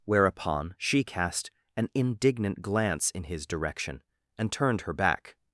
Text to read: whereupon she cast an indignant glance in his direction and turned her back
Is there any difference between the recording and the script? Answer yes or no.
no